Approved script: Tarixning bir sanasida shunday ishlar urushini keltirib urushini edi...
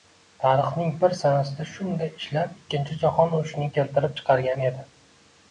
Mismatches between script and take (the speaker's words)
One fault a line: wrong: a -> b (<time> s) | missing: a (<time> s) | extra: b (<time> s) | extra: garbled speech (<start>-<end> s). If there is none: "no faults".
extra: ikkinchi jahon (2.6 s)
wrong: urushini -> chiqargan (4.2 s)